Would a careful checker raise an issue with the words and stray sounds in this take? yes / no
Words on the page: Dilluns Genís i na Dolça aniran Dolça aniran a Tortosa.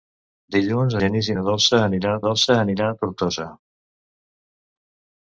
no